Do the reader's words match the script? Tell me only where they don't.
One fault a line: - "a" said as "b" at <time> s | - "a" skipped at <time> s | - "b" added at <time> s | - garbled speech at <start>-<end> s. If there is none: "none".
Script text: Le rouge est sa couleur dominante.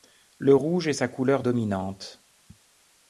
none